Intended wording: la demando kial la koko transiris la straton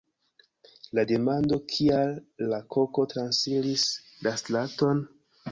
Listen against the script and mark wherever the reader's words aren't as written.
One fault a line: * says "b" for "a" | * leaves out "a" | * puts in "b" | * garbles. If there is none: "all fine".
all fine